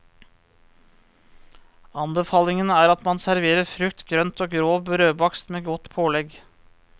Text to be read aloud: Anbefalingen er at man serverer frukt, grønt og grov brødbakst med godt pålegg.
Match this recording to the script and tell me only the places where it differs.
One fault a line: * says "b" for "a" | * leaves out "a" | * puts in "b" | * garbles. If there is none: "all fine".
all fine